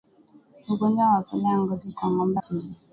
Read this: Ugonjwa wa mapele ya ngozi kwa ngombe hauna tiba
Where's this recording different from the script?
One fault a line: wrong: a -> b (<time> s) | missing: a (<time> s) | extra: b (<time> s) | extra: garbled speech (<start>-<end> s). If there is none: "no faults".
missing: hauna (2.4 s)